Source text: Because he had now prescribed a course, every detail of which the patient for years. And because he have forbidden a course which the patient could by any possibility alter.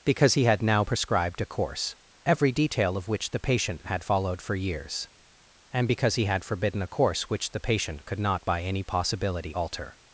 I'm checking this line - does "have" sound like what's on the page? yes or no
no